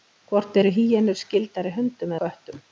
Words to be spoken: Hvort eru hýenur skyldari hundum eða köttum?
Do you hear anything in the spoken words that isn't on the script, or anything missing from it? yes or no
yes